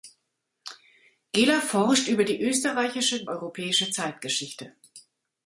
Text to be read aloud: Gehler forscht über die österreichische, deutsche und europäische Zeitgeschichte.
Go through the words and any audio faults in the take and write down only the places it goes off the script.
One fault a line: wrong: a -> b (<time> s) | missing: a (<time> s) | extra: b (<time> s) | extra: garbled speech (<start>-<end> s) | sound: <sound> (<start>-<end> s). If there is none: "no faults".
missing: deutsche und (3.3 s)